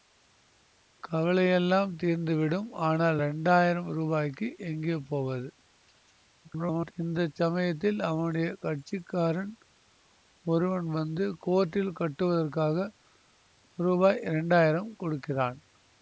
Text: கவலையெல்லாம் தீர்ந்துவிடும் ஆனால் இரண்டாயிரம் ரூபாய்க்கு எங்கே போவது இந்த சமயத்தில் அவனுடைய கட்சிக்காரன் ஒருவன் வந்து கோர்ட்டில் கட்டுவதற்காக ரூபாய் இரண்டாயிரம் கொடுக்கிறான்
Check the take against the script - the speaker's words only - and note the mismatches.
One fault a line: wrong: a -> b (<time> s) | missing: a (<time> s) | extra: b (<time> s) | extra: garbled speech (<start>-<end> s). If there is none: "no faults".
extra: garbled speech (6.4-6.9 s)